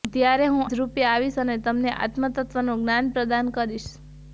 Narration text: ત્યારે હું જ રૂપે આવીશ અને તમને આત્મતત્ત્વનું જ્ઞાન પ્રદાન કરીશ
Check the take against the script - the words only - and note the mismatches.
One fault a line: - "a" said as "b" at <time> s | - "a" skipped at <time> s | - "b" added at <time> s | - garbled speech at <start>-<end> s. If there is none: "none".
none